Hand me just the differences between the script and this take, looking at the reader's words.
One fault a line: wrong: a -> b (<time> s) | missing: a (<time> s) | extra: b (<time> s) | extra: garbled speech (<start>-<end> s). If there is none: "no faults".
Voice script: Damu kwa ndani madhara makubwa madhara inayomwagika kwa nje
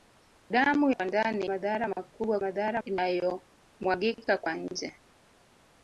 no faults